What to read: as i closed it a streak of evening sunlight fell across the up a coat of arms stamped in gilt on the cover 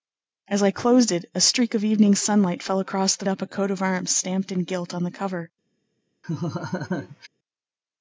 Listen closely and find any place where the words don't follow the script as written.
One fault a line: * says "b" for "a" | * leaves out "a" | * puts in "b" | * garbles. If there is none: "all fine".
all fine